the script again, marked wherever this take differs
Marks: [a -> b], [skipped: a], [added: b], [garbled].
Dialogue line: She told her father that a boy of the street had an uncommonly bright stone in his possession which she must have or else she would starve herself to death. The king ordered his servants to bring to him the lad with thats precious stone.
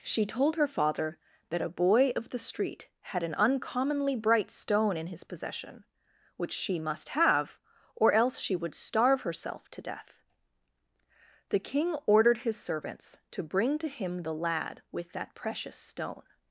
She told her father that a boy of the street had an uncommonly bright stone in his possession which she must have or else she would starve herself to death. The king ordered his servants to bring to him the lad with [thats -> that] precious stone.